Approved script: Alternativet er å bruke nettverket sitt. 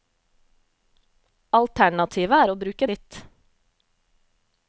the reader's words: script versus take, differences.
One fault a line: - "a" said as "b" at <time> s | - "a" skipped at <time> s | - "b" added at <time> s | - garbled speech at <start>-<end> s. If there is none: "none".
- "nettverket" skipped at 2.9 s